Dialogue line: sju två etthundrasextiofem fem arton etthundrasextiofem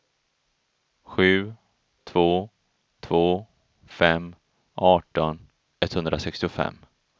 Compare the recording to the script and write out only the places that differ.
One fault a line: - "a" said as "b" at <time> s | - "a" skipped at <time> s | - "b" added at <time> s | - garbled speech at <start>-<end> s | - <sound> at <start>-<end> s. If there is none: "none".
- "etthundrasextiofem" said as "två" at 3.0 s